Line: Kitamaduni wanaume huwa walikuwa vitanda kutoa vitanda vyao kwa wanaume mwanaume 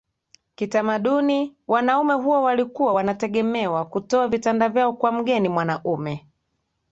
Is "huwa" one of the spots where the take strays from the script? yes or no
no